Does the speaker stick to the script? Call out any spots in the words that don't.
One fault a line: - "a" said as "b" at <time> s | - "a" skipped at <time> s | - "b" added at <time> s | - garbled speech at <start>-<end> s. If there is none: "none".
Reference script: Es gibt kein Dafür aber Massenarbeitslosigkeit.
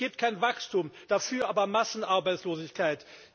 - "Wachstum" added at 0.4 s